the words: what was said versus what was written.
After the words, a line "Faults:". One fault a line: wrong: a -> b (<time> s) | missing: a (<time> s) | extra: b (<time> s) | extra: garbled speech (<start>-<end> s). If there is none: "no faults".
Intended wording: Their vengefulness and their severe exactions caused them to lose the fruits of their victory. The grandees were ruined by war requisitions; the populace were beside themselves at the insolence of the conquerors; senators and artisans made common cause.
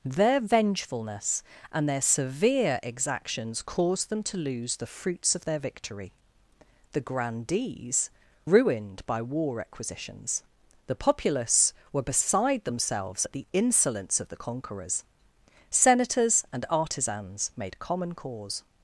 Their vengefulness and their severe exactions caused them to lose the fruits of their victory. The grandees ruined by war requisitions; the populace were beside themselves at the insolence of the conquerors; senators and artisans made common cause.
Faults:
missing: were (8.1 s)